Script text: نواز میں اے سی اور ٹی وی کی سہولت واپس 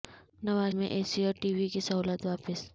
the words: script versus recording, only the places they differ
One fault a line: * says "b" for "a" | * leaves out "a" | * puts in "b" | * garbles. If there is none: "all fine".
all fine